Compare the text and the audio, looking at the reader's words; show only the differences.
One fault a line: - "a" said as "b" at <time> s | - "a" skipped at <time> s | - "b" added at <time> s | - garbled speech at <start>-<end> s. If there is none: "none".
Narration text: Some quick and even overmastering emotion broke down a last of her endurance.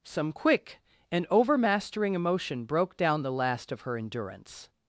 - "even" skipped at 1.3 s
- "a" said as "the" at 3.2 s